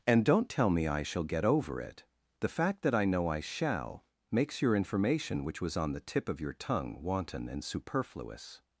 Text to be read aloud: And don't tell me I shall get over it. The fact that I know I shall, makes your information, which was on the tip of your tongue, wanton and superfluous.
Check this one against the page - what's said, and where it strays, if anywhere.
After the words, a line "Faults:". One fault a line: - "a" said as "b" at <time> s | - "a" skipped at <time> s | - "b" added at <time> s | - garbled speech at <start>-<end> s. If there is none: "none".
And don't tell me I shall get over it. The fact that I know I shall, makes your information, which was on the tip of your tongue, wanton and superfluous.
Faults:
none